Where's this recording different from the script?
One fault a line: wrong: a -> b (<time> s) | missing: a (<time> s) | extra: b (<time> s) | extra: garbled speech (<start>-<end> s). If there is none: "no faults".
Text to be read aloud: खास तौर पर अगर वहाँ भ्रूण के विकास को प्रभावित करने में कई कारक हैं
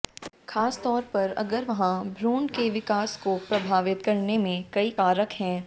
no faults